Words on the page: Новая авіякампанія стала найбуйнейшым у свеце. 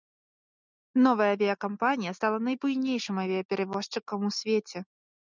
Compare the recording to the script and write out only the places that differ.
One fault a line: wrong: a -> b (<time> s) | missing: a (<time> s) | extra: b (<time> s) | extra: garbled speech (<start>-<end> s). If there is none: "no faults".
extra: авіяперавозчыкам (3.2 s)